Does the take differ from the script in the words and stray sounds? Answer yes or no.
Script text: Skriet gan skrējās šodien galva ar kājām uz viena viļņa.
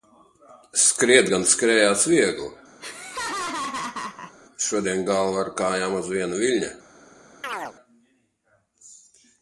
yes